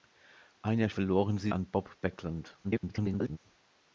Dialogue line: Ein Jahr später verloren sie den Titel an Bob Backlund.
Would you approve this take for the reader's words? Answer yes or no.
no